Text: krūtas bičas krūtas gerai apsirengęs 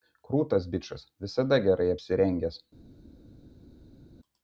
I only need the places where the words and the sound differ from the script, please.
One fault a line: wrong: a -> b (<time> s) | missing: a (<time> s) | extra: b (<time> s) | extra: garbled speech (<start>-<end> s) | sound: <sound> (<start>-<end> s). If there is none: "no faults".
wrong: krūtas -> visada (1.3 s)